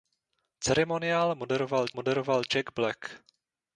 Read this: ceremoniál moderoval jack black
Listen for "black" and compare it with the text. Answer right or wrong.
right